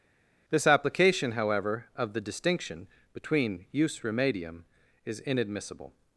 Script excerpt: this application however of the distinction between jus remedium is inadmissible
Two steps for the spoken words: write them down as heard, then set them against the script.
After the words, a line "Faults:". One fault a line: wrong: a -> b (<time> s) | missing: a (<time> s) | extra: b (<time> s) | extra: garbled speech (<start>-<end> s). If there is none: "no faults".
this application however of the distinction between jus remedium is inadmissible
Faults:
no faults